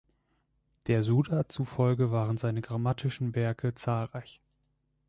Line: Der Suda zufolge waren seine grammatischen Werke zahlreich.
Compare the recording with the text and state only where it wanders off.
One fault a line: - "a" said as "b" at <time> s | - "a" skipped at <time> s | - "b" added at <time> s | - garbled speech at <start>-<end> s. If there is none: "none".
none